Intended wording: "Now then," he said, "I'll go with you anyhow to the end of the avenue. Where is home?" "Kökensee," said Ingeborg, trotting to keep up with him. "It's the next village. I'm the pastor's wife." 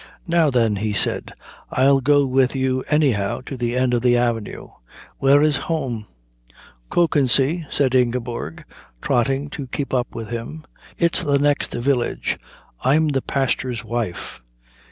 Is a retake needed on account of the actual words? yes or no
no